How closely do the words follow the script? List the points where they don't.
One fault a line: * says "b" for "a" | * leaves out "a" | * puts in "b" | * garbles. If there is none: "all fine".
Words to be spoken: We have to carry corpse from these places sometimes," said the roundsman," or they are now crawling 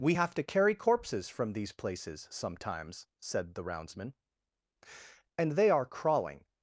* says "corpses" for "corpse"
* says "and" for "or"
* leaves out "now"